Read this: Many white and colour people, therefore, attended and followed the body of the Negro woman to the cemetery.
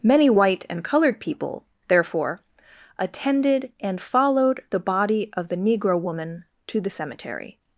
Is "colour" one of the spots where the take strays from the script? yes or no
yes